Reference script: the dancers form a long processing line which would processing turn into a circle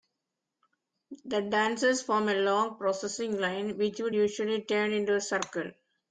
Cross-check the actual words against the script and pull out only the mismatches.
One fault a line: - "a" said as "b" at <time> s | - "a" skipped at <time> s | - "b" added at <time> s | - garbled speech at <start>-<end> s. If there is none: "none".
- "processing" said as "usually" at 4.1 s